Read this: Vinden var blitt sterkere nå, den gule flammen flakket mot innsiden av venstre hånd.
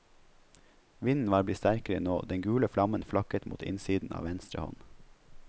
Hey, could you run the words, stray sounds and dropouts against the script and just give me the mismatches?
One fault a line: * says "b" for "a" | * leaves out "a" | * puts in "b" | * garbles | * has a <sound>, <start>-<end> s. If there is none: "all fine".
all fine